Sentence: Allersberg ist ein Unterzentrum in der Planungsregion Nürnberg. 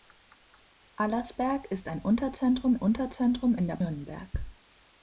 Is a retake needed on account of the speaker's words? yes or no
yes